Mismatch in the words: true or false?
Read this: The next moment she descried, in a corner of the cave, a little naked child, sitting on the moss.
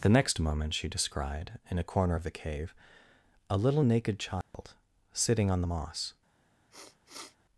false